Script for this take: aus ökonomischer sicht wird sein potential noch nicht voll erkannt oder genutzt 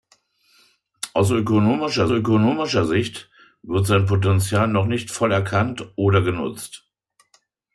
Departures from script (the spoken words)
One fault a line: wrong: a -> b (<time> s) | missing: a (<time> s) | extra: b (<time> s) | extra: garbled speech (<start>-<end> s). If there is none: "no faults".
extra: ökonomischer (2.1 s)